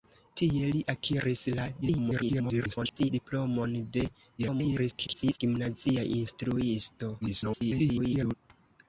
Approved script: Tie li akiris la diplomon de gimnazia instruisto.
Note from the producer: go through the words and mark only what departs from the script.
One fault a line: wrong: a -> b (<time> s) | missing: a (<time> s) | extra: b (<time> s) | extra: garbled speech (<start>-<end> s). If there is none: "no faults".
extra: garbled speech (1.8-3.1 s)
extra: garbled speech (4.4-5.4 s)
extra: garbled speech (7.2-8.3 s)